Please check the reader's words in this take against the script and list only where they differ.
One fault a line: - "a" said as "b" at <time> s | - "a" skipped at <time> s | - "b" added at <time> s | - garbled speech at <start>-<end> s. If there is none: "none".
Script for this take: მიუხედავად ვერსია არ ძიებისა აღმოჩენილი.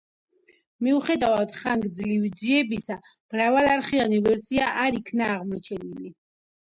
- "ხანგრძლივი ძიებისა მრავალარხიანი" added at 1.6 s
- "ძიებისა" said as "იქნა" at 5.0 s